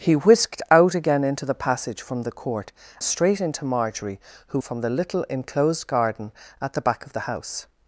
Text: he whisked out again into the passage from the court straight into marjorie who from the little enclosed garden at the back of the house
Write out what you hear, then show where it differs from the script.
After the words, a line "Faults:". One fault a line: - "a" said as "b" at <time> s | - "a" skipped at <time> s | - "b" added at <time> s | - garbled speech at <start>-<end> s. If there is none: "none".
he whisked out again into the passage from the court straight into marjorie who from the little enclosed garden at the back of the house
Faults:
none